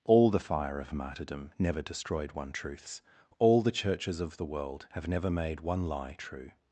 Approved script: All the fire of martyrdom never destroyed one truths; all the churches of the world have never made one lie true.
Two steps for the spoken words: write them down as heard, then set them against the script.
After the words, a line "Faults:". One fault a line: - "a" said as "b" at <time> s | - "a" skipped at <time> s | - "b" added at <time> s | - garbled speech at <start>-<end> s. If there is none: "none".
All the fire of martyrdom never destroyed one truths; all the churches of the world have never made one lie true.
Faults:
none